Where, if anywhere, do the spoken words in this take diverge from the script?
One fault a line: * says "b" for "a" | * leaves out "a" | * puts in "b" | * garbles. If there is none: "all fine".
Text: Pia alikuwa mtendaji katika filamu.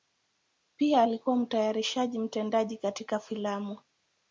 * puts in "mtayarishaji"